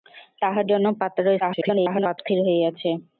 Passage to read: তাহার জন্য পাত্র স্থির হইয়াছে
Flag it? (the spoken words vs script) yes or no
yes